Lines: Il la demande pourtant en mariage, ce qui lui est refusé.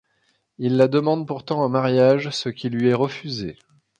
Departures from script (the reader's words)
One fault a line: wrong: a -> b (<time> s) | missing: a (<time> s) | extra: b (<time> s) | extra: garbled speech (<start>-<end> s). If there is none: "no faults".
no faults